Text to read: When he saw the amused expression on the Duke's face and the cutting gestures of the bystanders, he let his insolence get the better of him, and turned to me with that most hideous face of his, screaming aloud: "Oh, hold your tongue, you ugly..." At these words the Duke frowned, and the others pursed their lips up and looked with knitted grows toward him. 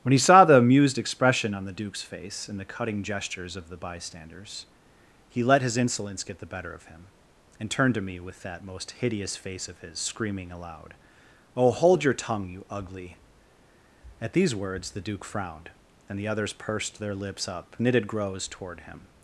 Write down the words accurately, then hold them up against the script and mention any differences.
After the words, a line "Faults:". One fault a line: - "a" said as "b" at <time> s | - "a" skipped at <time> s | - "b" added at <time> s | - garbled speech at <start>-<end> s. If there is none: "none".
When he saw the amused expression on the Duke's face and the cutting gestures of the bystanders, he let his insolence get the better of him, and turned to me with that most hideous face of his, screaming aloud: "Oh, hold your tongue, you ugly..." At these words the Duke frowned, and the others pursed their lips up knitted grows toward him.
Faults:
- "and looked with" skipped at 17.8 s